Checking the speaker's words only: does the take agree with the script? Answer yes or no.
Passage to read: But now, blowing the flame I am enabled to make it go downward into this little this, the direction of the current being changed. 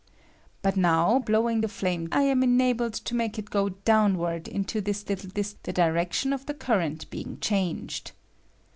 yes